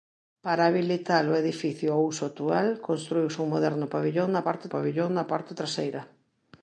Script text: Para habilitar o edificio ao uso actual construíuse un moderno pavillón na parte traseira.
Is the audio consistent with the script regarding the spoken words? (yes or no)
no